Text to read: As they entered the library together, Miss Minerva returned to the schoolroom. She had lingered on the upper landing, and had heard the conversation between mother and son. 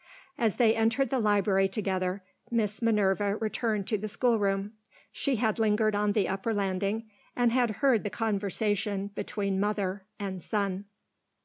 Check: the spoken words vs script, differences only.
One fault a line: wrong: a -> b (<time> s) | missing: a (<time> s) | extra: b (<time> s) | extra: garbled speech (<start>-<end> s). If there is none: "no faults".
no faults